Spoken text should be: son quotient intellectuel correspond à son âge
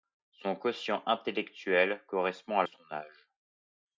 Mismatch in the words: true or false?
false